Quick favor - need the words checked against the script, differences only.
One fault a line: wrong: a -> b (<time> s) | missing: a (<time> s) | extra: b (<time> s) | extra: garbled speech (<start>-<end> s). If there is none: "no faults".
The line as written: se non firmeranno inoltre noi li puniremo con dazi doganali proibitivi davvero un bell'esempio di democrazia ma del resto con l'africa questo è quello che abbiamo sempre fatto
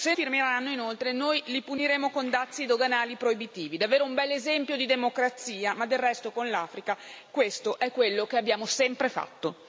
missing: non (0.1 s)